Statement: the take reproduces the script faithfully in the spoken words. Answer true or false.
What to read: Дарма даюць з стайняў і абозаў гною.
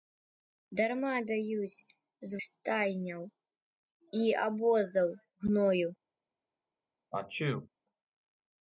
true